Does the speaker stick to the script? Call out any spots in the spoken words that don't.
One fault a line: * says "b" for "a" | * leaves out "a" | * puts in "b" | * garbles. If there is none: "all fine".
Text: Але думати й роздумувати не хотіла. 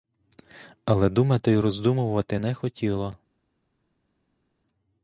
all fine